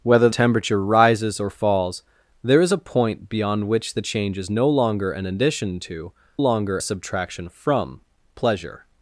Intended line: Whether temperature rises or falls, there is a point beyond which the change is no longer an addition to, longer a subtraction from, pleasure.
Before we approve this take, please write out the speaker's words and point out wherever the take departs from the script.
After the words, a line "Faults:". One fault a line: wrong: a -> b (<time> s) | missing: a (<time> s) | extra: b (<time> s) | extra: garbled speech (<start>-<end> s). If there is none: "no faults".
Whether temperature rises or falls, there is a point beyond which the change is no longer an addition to, longer a subtraction from, pleasure.
Faults:
no faults